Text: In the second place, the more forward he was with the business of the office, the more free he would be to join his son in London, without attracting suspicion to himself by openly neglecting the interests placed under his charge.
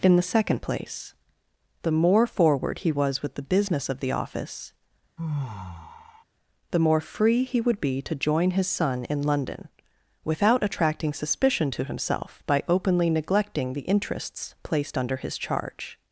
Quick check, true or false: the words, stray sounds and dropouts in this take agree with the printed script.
false